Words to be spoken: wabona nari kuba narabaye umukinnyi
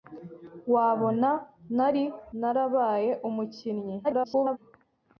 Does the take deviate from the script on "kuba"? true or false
true